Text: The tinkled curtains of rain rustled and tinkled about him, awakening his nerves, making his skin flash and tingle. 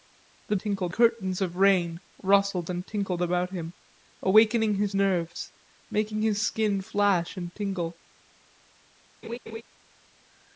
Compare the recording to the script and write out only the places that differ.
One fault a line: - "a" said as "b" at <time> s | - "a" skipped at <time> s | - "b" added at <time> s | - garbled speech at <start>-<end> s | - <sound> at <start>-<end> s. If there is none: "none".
- laugh at 9.2-9.6 s